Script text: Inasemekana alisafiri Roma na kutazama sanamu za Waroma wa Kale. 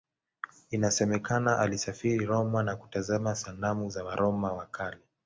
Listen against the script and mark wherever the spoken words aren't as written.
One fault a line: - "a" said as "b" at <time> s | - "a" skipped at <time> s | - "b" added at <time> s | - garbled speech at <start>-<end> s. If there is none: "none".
none